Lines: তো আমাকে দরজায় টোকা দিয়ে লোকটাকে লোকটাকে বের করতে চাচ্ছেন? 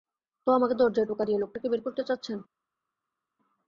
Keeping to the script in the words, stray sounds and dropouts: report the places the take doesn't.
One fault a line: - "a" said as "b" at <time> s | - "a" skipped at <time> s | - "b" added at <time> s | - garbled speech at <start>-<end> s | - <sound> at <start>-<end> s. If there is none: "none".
- "লোকটাকে" skipped at 1.7 s